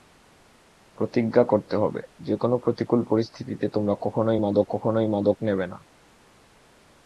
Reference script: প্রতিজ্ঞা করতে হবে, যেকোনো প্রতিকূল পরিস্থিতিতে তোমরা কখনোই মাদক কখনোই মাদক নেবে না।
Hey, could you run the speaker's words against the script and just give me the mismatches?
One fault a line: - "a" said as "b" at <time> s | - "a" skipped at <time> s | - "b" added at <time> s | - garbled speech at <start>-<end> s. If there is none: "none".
none